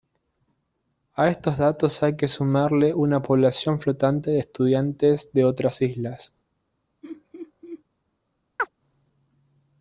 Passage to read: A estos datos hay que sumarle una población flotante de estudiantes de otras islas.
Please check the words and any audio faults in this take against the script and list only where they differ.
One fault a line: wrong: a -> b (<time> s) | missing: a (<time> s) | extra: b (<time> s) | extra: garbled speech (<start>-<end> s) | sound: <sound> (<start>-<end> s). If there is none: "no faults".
sound: laugh (7.0-7.8 s)
sound: chirp (8.6-8.7 s)